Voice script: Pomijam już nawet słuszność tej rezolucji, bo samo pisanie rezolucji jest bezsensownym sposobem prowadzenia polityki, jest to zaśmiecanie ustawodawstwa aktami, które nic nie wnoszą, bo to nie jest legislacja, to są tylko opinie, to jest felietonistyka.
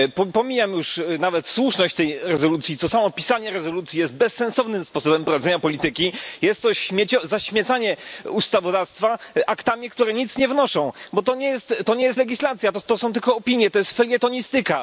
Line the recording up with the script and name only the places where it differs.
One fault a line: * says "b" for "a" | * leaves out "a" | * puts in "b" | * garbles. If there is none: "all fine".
all fine